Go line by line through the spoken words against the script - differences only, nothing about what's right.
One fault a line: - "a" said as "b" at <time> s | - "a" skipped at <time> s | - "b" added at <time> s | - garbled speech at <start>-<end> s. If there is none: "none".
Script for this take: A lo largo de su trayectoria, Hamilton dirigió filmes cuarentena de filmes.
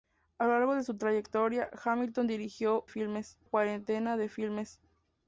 none